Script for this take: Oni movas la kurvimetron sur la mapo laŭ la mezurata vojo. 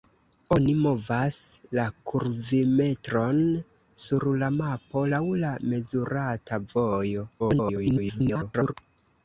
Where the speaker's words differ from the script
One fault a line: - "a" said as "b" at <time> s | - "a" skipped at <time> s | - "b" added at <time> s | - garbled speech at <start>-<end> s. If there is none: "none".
- garbled speech at 7.4-8.7 s